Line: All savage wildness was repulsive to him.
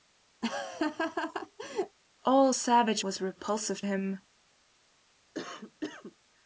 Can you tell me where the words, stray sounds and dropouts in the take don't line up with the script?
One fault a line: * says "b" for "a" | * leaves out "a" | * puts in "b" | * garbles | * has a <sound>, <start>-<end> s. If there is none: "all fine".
* has a laugh, 0.4-2.0 s
* leaves out "wildness"
* leaves out "to"
* has a cough, 5.3-6.2 s